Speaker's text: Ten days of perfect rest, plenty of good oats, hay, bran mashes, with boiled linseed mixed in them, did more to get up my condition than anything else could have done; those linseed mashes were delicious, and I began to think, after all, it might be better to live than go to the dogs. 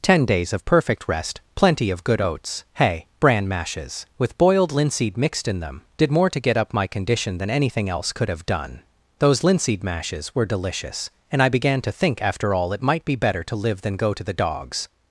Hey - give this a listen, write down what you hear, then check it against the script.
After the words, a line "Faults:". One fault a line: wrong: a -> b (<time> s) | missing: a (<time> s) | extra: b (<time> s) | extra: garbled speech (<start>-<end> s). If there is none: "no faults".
Ten days of perfect rest, plenty of good oats, hay, bran mashes, with boiled linseed mixed in them, did more to get up my condition than anything else could have done; those linseed mashes were delicious, and I began to think, after all, it might be better to live than go to the dogs.
Faults:
no faults